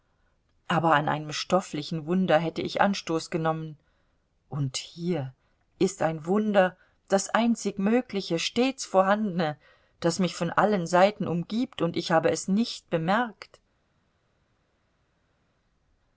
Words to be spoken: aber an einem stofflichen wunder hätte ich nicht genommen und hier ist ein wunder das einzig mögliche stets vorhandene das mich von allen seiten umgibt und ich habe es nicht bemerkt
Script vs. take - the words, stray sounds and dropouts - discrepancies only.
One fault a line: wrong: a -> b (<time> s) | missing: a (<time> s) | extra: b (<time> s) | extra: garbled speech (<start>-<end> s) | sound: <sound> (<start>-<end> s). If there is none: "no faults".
wrong: nicht -> anstoß (2.8 s)